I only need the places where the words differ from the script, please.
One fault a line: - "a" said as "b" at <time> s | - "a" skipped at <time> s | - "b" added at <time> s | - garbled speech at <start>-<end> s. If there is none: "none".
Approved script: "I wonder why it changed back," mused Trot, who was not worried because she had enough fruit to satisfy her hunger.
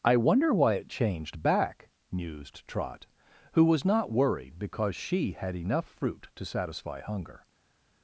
- "her" skipped at 7.0 s